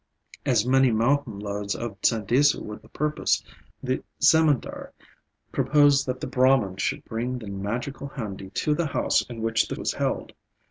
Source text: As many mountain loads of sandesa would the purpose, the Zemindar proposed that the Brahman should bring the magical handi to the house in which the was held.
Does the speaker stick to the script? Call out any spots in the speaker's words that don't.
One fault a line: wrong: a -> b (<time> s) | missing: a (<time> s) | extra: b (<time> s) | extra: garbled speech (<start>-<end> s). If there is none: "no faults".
no faults